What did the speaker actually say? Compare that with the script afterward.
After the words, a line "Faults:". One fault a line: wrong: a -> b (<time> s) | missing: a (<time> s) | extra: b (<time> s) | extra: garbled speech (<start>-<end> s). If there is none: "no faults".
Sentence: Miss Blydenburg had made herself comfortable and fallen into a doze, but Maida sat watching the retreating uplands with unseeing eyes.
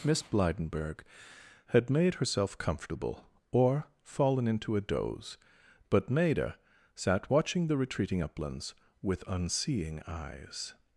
Miss Blydenburg had made herself comfortable or fallen into a doze, but Maida sat watching the retreating uplands with unseeing eyes.
Faults:
wrong: and -> or (3.5 s)